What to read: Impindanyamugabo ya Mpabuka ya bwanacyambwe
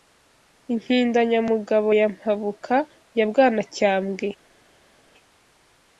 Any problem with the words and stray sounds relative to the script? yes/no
no